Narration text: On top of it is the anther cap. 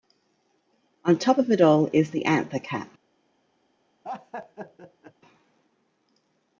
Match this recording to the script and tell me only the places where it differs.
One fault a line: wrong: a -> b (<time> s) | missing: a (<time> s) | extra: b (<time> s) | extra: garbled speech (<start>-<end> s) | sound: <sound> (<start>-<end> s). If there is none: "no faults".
extra: all (1.6 s)
sound: laugh (4.0-5.1 s)